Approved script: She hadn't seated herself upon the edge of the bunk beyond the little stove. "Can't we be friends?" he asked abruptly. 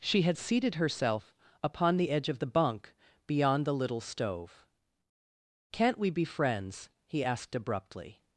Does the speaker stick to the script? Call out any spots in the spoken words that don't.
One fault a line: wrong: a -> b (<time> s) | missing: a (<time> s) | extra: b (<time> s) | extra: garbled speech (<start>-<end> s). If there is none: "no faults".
wrong: hadn't -> had (0.2 s)